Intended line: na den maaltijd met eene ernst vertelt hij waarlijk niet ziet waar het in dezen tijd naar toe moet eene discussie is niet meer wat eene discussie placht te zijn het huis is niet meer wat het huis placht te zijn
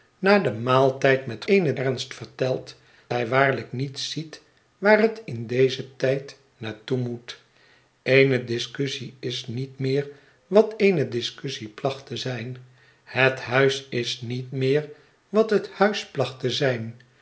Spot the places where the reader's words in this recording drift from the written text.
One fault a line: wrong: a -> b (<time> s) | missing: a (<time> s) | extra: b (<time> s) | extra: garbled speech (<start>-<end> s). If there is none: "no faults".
no faults